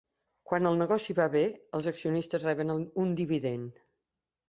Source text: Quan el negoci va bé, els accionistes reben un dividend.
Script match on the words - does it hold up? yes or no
yes